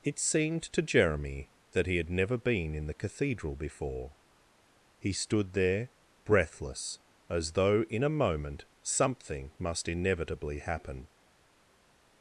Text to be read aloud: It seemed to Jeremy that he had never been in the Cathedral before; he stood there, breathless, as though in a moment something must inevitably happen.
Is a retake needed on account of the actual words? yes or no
no